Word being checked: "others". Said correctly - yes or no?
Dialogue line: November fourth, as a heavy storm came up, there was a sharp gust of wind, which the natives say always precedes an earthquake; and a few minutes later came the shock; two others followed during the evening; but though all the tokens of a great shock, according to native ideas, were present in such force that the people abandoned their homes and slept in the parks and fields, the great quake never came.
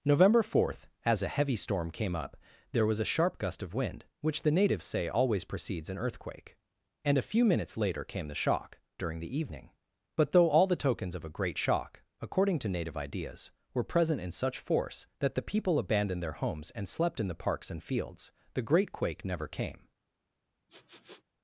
no